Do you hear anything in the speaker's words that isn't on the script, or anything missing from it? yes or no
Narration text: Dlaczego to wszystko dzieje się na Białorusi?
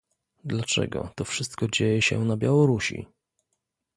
no